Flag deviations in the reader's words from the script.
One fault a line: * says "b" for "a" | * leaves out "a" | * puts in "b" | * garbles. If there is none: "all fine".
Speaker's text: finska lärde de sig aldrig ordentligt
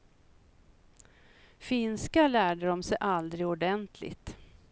all fine